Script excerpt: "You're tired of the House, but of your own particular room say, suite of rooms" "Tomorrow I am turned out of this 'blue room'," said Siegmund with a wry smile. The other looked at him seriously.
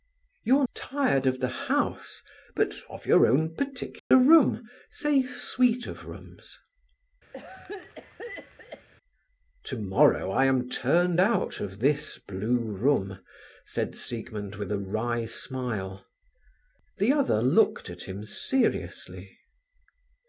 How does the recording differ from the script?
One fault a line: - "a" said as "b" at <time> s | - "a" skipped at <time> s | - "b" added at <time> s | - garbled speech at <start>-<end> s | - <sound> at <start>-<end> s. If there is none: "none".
- dropout at 4.0-4.1 s
- cough at 7.3-8.9 s